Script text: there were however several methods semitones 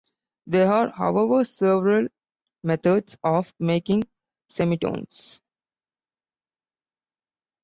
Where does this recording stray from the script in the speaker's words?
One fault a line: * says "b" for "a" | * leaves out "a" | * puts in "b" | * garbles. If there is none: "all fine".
* says "are" for "were"
* puts in "of making"